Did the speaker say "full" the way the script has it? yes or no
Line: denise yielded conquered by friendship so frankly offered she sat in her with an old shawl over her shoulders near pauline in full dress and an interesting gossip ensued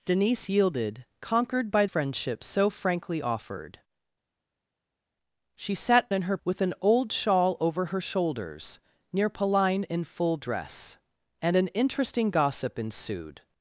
yes